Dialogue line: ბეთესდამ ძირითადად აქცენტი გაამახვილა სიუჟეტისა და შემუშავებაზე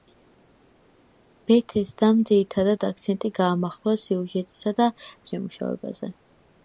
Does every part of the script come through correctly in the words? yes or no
yes